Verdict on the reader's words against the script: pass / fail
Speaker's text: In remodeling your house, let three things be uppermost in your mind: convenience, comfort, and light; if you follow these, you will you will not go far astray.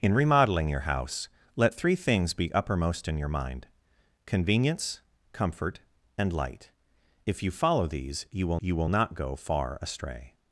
pass